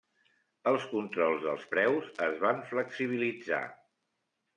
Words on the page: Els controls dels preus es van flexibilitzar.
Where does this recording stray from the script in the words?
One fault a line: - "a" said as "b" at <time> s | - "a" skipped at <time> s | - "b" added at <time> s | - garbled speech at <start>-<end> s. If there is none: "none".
none